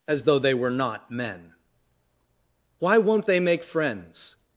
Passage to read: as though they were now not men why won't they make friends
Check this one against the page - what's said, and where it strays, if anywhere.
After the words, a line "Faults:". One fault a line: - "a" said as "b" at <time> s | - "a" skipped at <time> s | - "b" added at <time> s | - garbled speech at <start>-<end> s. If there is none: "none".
as though they were not men why won't they make friends
Faults:
- "now" skipped at 0.7 s